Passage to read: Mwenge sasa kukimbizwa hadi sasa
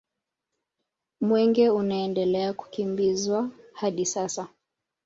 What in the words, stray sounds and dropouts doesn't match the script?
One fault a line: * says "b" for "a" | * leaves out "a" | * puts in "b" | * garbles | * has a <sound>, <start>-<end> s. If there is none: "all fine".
* says "unaendelea" for "sasa"